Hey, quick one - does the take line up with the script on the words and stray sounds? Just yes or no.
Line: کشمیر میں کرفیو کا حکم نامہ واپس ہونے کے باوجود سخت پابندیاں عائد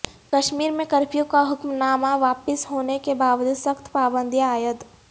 yes